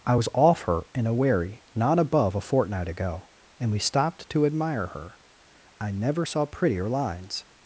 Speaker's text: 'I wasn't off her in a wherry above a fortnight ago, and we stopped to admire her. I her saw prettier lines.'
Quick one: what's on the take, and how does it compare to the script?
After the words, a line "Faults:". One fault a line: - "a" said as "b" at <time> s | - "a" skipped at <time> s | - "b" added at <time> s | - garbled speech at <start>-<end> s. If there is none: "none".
'I was off her in a wherry not above a fortnight ago, and we stopped to admire her. I never saw prettier lines.'
Faults:
- "wasn't" said as "was" at 0.1 s
- "not" added at 1.8 s
- "her" said as "never" at 5.9 s